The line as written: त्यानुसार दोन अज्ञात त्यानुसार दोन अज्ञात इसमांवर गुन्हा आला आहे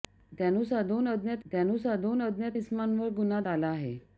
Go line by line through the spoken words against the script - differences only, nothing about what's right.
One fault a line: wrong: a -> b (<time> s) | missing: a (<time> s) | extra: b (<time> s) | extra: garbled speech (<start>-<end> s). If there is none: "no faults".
no faults